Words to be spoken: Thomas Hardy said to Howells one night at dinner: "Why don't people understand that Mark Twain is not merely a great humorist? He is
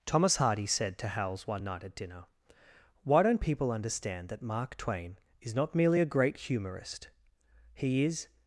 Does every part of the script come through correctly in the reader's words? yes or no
yes